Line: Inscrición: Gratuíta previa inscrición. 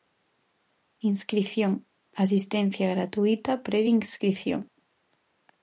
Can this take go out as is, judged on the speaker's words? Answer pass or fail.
fail